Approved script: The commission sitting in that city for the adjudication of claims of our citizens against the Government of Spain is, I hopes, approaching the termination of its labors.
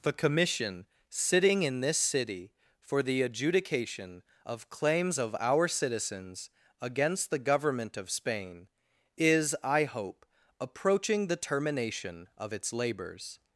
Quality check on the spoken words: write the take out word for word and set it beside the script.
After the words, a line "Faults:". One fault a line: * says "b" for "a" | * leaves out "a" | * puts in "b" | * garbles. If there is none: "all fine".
The commission sitting in this city for the adjudication of claims of our citizens against the Government of Spain is, I hope, approaching the termination of its labors.
Faults:
* says "this" for "that"
* says "hope" for "hopes"